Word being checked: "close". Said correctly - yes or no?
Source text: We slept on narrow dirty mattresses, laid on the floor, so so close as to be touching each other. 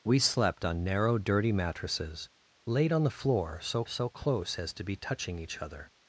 yes